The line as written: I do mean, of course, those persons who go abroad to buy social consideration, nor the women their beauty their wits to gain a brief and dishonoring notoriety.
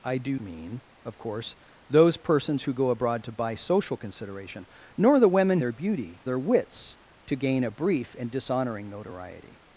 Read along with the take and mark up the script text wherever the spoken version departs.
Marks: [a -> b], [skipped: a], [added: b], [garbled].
I do mean, of course, those persons who go abroad to buy social consideration, nor the women their beauty their wits to gain a brief and dishonoring notoriety.